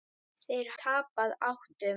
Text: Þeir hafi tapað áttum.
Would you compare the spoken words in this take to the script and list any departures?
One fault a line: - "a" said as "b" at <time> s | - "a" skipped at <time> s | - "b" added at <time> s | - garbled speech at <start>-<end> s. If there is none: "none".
- "hafi" skipped at 0.7 s